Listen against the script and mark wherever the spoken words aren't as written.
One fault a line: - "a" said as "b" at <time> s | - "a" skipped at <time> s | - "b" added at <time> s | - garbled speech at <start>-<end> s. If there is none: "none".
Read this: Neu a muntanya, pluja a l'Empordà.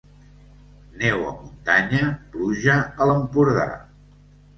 none